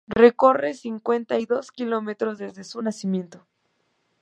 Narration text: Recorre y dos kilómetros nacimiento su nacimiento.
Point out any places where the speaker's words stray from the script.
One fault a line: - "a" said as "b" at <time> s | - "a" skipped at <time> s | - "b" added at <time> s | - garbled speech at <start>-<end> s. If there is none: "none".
- "cincuenta" added at 0.7 s
- "nacimiento" said as "desde" at 2.4 s